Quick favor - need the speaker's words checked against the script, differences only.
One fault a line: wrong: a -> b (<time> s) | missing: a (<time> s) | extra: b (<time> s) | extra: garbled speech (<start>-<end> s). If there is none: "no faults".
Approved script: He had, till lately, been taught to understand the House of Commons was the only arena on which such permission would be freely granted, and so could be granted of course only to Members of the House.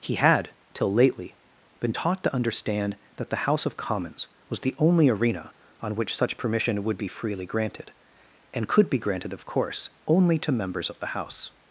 extra: that (3.2 s)
missing: so (8.7 s)